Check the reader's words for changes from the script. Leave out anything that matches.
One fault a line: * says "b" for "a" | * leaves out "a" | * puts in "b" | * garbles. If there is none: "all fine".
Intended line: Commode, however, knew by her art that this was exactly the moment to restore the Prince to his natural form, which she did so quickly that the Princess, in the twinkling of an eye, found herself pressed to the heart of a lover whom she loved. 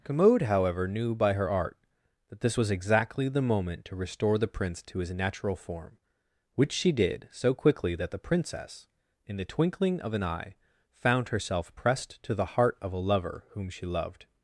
all fine